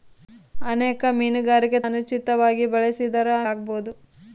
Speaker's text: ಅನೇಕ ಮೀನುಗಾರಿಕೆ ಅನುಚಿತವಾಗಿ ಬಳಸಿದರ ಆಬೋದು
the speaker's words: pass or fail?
pass